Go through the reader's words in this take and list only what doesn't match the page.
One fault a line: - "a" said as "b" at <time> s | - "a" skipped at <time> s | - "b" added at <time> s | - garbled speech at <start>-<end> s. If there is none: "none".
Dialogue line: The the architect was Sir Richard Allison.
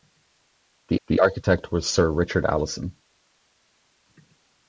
none